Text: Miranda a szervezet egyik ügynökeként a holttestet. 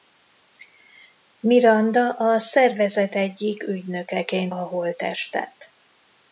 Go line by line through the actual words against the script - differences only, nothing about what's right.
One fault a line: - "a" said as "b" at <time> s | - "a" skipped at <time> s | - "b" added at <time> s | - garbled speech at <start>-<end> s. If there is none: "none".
none